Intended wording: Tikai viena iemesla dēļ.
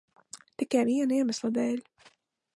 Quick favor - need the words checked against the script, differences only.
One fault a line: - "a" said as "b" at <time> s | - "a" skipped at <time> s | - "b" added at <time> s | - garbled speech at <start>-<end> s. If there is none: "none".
none